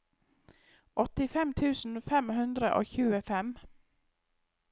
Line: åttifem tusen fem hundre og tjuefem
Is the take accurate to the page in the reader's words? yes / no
yes